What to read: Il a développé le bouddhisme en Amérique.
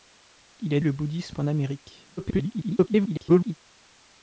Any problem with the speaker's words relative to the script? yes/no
yes